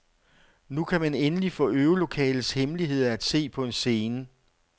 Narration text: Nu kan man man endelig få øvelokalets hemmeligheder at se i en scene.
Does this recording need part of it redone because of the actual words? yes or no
yes